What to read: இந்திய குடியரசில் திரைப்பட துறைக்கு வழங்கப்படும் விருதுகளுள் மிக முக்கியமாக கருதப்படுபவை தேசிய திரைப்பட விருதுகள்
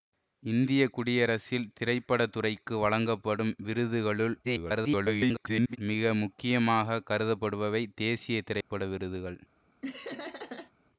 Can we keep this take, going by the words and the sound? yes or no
no